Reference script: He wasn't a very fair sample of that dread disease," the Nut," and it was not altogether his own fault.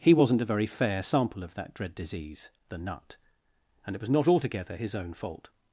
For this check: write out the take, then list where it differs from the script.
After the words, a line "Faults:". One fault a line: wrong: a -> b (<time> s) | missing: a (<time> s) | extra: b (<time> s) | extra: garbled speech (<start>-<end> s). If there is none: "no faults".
He wasn't a very fair sample of that dread disease," the Nut," and it was not altogether his own fault.
Faults:
no faults